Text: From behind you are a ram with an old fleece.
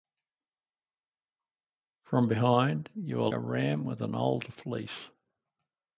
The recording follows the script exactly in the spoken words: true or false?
true